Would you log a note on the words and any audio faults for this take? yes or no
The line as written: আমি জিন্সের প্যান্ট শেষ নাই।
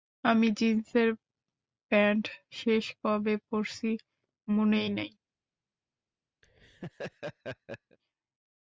yes